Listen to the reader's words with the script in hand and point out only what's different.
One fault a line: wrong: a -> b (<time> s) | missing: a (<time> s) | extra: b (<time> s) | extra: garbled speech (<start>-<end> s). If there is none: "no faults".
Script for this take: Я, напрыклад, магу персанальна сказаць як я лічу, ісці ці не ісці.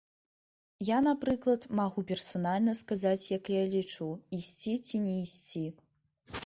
no faults